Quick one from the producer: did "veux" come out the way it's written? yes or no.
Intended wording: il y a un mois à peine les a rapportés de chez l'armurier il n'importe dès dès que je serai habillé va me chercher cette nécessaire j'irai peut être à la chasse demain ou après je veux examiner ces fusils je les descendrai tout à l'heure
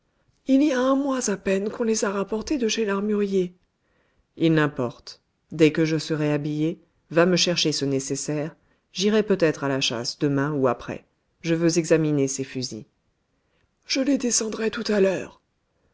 yes